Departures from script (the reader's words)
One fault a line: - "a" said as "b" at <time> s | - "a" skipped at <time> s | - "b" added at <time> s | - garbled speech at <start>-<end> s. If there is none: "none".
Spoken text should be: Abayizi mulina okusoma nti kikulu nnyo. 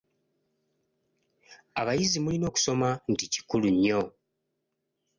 none